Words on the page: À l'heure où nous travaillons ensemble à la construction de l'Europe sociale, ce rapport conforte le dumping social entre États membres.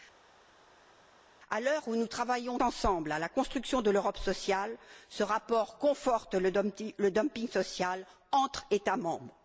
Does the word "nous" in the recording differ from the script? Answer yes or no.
no